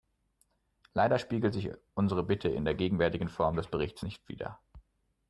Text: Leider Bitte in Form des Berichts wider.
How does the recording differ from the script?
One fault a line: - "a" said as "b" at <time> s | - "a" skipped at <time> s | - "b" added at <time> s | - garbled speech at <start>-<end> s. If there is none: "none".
- "spiegelt sich unsere" added at 1.2 s
- "der gegenwärtigen" added at 2.6 s
- "nicht" added at 4.0 s